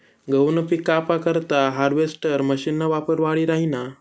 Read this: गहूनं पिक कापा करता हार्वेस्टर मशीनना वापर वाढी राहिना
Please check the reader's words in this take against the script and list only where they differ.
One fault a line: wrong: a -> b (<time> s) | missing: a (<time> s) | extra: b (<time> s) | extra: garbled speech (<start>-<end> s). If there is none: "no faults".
no faults